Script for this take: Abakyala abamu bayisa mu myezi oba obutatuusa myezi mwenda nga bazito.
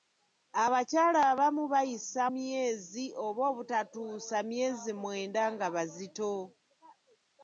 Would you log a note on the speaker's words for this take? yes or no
yes